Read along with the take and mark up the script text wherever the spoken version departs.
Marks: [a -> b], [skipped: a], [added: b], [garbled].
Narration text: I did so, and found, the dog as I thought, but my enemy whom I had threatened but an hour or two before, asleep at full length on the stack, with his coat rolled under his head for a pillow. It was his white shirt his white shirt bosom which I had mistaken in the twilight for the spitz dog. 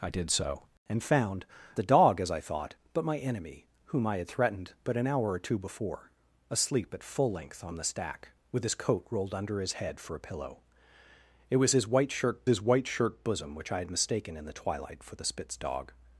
I did so, and found, the dog as I thought, but my enemy whom I had threatened but an hour or two before, asleep at full length on the stack, with his coat rolled under his head for a pillow. It was his white shirt his white shirt bosom which I had mistaken in the twilight for the spitz dog.